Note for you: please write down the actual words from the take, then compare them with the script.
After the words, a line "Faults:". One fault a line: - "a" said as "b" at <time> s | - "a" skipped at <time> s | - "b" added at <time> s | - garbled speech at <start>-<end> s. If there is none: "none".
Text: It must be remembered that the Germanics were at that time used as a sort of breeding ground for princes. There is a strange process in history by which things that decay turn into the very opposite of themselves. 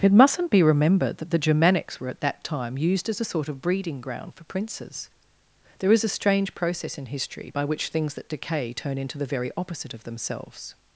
It mustn't be remembered that the Germanics were at that time used as a sort of breeding ground for princes. There is a strange process in history by which things that decay turn into the very opposite of themselves.
Faults:
- "must" said as "mustn't" at 0.1 s